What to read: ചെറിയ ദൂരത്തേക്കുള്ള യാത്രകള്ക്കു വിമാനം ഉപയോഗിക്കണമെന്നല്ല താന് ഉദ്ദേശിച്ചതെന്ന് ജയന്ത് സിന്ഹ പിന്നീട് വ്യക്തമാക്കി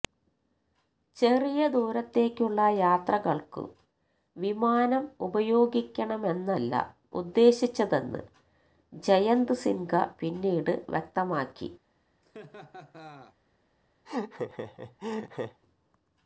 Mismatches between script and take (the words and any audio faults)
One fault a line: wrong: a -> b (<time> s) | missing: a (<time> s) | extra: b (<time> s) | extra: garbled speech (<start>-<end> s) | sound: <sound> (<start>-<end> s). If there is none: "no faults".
missing: താന് (6.7 s)
sound: laugh (12.2-13.4 s)
sound: laugh (14.0-15.6 s)